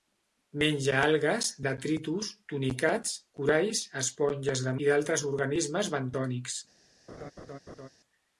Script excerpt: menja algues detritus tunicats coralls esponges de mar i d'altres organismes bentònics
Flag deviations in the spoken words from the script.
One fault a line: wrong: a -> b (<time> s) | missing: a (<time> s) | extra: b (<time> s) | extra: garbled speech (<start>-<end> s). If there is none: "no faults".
missing: mar (4.7 s)